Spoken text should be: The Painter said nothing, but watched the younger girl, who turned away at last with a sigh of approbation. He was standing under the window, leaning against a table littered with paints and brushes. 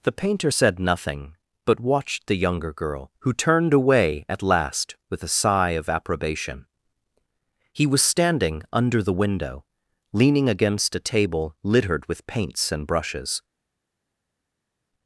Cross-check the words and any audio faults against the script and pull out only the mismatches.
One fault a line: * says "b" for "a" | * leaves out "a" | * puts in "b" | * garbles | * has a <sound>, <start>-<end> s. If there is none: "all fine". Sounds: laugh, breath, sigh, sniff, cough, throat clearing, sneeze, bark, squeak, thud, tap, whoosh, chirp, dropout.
all fine